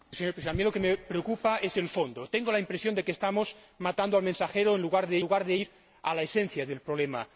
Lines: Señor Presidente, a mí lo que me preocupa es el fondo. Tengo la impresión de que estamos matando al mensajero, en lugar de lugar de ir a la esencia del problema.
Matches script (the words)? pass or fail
pass